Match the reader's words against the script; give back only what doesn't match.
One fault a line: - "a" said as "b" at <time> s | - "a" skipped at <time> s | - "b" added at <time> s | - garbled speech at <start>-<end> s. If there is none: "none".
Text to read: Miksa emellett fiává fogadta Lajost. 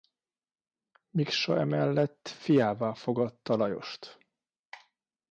none